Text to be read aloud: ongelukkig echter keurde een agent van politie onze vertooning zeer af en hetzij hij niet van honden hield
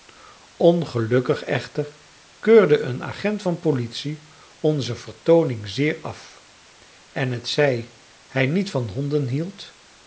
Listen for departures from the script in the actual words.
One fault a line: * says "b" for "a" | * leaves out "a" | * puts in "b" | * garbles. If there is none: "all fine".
all fine